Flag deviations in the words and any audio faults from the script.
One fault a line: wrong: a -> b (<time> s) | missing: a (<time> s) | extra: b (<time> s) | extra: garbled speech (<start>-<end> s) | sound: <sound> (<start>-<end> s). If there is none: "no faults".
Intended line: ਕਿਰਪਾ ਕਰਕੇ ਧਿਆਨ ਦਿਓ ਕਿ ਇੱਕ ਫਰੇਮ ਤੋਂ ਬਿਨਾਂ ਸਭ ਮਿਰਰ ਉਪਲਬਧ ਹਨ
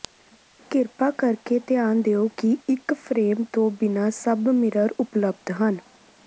no faults